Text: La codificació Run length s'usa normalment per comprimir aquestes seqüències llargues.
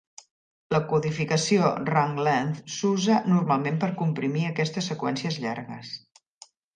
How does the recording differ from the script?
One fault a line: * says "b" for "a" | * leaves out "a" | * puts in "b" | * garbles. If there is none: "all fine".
all fine